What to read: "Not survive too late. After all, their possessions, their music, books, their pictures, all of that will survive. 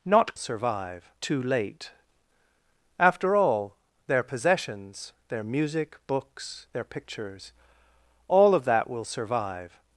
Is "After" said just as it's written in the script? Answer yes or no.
yes